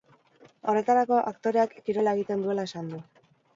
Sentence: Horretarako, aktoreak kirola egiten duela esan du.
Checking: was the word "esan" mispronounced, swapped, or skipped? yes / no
no